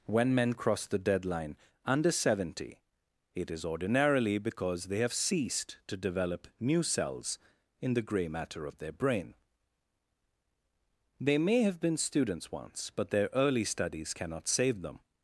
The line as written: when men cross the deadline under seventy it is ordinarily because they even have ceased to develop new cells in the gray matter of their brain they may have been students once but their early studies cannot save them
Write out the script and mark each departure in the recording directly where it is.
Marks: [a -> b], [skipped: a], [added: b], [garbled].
when men cross the deadline under seventy it is ordinarily because they [skipped: even] have ceased to develop new cells in the gray matter of their brain they may have been students once but their early studies cannot save them